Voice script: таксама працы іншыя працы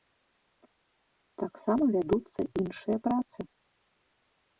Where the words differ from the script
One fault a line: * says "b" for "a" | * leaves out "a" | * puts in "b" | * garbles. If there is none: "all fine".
* says "вядуцца" for "працы"